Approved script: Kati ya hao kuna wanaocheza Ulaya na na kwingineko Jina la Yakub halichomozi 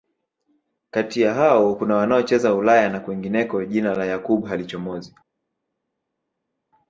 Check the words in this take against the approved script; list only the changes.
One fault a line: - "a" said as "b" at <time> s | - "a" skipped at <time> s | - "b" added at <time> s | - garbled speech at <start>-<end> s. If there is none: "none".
- "na" skipped at 3.0 s